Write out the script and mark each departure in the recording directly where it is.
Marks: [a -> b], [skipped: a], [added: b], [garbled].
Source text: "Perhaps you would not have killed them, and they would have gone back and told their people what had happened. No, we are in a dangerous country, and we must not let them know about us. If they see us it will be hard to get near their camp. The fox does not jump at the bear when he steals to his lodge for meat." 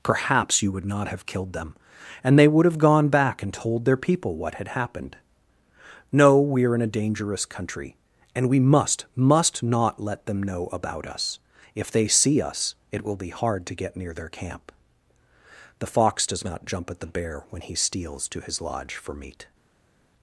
"Perhaps you would not have killed them, and they would have gone back and told their people what had happened. No, we are in a dangerous country, and we must [added: must] not let them know about us. If they see us it will be hard to get near their camp. The fox does not jump at the bear when he steals to his lodge for meat."